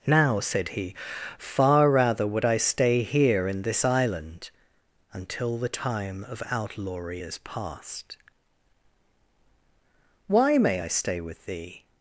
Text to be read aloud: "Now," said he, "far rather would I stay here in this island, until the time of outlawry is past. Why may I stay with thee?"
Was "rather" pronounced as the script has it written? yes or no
yes